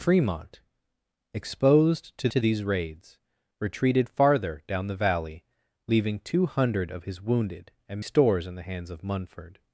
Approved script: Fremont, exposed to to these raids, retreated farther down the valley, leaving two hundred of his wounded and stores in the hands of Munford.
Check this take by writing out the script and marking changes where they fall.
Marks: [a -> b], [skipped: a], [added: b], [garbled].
Fremont, exposed to to these raids, retreated farther down the valley, leaving two hundred of his wounded and stores in the hands of Munford.